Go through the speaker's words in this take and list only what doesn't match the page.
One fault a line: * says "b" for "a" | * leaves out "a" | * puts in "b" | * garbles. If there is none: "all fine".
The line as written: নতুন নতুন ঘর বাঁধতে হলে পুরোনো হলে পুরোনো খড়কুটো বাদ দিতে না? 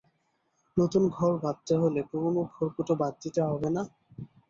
* leaves out "নতুন"
* leaves out "হলে পুরোনো"
* puts in "হবে"